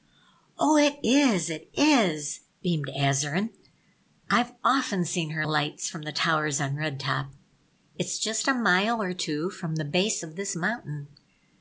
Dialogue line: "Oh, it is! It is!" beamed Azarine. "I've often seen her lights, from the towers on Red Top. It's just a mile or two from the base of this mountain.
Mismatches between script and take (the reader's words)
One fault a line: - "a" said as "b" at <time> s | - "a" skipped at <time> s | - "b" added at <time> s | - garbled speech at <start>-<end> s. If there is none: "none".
none